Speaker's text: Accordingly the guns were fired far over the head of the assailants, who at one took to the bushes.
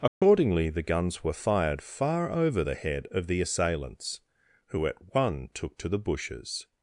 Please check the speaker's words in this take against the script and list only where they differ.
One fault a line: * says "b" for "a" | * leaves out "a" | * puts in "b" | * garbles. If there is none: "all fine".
all fine